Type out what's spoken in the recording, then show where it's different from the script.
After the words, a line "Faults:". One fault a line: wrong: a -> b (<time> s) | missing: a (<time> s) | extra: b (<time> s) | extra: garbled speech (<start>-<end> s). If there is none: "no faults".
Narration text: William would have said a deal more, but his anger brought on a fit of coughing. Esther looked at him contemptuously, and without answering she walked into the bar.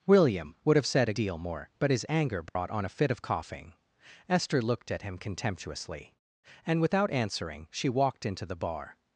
William would have said a deal more, but his anger brought on a fit of coughing. Esther looked at him contemptuously, and without answering she walked into the bar.
Faults:
no faults